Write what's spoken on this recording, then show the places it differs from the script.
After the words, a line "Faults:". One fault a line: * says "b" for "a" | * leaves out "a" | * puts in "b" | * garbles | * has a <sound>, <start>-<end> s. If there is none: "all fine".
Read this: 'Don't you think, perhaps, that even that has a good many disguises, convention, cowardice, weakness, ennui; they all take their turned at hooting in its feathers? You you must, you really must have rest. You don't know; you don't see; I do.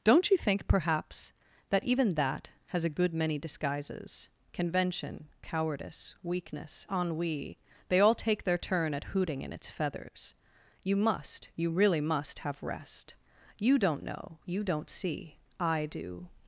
'Don't you think, perhaps, that even that has a good many disguises, convention, cowardice, weakness, ennui; they all take their turn at hooting in its feathers? You must, you really must have rest. You don't know; you don't see; I do.
Faults:
* says "turn" for "turned"
* leaves out "you"